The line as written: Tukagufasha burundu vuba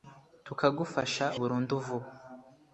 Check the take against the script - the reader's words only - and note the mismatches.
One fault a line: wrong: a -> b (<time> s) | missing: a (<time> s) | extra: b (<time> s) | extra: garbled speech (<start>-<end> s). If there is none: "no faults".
no faults